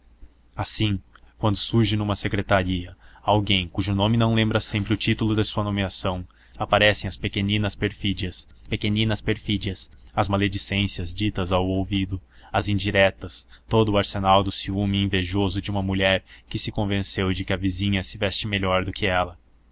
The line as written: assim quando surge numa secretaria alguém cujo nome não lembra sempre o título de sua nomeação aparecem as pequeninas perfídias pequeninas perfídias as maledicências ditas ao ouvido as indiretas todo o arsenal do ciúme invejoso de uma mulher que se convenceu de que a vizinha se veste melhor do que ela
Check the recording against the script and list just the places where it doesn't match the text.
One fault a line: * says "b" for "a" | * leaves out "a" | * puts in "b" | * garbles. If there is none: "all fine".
all fine